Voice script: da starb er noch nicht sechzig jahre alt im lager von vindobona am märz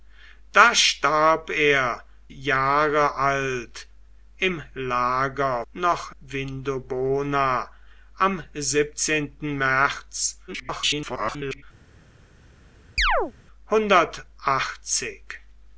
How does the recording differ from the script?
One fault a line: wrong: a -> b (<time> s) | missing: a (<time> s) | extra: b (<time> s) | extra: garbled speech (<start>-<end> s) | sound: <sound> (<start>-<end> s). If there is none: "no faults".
missing: noch nicht sechzig (2.0 s)
wrong: von -> noch (5.7 s)
extra: garbled speech (10.5-11.6 s)
sound: chirp (13.0-13.3 s)